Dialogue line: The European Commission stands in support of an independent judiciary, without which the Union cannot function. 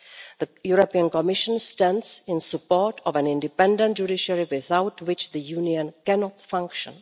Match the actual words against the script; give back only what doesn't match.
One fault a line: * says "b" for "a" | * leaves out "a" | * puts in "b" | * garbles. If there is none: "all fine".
all fine